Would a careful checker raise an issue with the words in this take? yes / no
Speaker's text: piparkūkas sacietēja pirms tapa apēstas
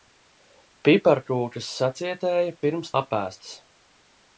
yes